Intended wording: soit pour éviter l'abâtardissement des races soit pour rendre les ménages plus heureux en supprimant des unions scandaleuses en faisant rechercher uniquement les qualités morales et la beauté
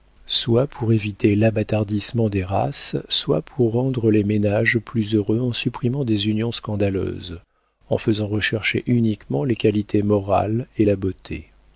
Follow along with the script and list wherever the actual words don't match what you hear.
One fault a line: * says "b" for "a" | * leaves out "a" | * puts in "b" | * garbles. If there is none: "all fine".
all fine